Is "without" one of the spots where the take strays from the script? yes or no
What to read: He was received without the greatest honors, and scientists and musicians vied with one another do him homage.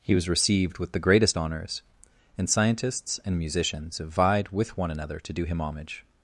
yes